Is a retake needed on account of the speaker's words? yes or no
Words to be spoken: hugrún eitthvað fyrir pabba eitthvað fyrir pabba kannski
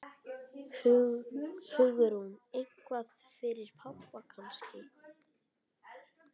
yes